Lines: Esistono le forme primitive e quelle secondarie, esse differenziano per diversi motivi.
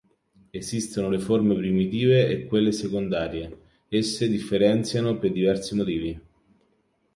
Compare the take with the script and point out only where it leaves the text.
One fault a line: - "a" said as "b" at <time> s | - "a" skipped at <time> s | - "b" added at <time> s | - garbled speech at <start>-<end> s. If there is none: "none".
none